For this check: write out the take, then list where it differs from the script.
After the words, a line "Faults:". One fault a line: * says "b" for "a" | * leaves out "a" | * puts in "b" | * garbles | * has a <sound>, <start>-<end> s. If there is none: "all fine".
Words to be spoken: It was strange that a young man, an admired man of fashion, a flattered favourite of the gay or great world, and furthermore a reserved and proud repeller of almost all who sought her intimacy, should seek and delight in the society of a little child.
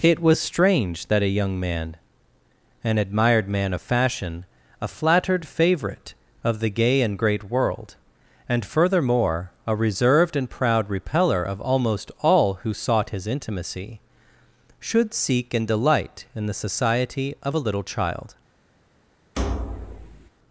It was strange that a young man, an admired man of fashion, a flattered favourite of the gay and great world, and furthermore a reserved and proud repeller of almost all who sought his intimacy, should seek and delight in the society of a little child.
Faults:
* says "and" for "or"
* says "his" for "her"
* has a thud, 19.4-20.3 s